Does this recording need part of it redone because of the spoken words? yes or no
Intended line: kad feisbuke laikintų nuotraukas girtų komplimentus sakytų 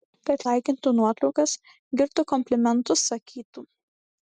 yes